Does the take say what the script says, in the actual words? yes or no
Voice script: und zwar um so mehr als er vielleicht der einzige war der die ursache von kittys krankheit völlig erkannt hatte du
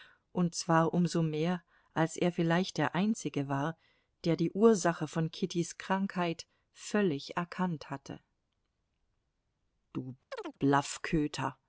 yes